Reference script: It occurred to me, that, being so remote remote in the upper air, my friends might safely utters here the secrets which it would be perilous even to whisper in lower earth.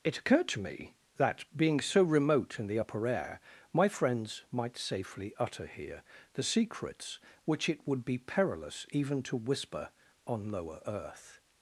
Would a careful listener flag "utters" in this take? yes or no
yes